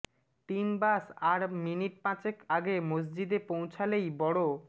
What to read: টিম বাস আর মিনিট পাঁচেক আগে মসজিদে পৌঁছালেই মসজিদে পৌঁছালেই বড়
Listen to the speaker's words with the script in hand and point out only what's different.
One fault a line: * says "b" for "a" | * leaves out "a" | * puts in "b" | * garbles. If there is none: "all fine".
* leaves out "মসজিদে পৌঁছালেই"